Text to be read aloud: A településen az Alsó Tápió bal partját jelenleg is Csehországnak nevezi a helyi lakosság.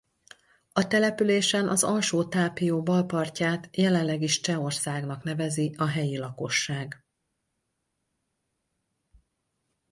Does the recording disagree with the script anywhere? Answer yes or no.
no